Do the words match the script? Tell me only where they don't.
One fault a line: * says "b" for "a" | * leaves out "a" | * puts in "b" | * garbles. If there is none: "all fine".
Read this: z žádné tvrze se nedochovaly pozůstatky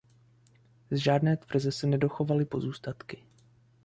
all fine